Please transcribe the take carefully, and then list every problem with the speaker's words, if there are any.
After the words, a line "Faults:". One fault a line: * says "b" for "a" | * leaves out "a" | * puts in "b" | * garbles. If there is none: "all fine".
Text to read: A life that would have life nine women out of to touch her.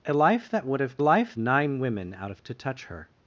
A life that would have life nine women out of to touch her.
Faults:
all fine